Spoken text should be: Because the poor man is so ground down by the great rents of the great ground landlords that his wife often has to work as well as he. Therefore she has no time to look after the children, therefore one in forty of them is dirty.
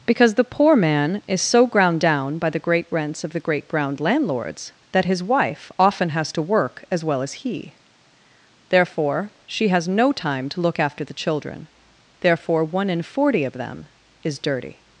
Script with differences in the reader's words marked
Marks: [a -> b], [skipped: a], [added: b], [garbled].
Because the poor man is so ground down by the great rents of the great ground landlords that his wife often has to work as well as he. Therefore she has no time to look after the children, therefore one in forty of them is dirty.